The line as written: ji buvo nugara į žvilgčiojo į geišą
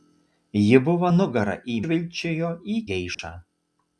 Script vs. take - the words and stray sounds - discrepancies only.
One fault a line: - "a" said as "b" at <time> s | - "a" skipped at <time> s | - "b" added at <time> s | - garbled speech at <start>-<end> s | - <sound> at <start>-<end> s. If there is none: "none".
- dropout at 3.1-3.2 s